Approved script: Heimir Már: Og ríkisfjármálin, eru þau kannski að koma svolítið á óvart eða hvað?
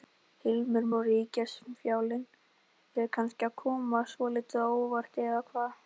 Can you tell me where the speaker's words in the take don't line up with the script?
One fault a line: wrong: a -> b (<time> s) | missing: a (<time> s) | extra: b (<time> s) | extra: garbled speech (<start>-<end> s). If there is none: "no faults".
missing: Már (0.8 s)
missing: eru (2.3 s)